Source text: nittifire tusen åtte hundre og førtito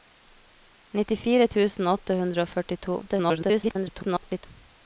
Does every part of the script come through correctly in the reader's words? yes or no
no